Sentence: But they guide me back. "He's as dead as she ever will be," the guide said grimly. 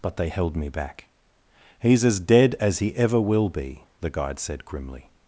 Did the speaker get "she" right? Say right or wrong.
wrong